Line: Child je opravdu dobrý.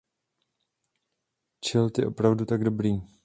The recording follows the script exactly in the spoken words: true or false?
false